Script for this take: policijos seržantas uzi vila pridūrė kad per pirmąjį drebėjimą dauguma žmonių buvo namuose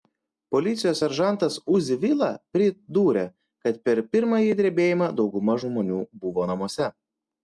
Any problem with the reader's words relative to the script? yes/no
no